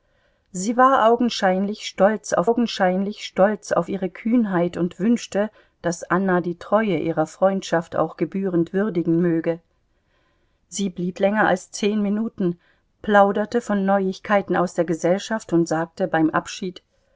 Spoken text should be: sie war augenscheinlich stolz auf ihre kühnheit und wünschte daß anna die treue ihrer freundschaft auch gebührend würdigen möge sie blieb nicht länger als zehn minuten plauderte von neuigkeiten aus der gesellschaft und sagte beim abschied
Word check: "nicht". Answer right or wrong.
wrong